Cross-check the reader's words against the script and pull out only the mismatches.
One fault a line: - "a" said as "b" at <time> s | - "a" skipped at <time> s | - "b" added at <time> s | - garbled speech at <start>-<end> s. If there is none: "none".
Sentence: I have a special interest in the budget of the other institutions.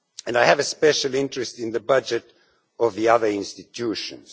none